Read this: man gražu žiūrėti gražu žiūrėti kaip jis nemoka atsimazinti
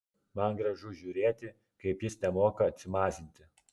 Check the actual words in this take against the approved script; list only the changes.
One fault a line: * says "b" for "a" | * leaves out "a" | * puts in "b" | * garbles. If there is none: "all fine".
* leaves out "gražu žiūrėti"